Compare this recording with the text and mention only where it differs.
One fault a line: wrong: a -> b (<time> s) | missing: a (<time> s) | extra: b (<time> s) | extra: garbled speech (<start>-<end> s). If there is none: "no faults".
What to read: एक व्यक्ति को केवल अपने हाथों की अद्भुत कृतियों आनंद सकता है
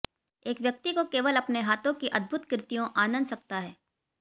no faults